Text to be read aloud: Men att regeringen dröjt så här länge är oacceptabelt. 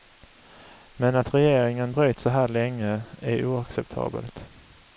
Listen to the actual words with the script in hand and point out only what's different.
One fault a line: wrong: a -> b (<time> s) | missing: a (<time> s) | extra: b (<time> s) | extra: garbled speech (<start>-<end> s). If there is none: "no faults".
no faults